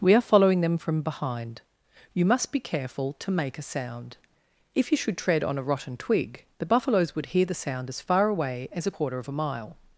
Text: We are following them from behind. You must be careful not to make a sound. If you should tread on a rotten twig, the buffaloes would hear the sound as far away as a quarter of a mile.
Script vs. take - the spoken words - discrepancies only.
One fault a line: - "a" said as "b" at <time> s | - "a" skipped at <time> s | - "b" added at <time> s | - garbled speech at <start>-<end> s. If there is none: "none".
- "not" skipped at 3.1 s